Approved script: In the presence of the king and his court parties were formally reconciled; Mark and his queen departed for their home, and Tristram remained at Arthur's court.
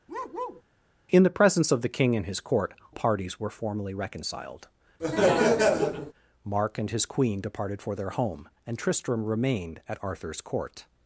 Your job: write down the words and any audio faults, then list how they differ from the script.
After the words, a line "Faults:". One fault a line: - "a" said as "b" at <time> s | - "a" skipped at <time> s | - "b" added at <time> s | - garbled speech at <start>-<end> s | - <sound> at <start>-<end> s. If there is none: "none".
In the presence of the king and his court parties were formally reconciled; Mark and his queen departed for their home, and Tristram remained at Arthur's court.
Faults:
- bark at 0.1-0.6 s
- laugh at 5.0-6.1 s